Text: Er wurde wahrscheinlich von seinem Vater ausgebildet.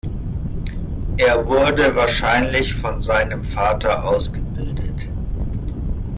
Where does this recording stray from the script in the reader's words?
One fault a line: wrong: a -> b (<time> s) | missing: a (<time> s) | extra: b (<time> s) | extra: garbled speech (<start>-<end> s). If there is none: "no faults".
no faults